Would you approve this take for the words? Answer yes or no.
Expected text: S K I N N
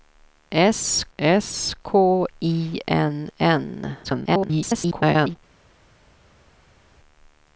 no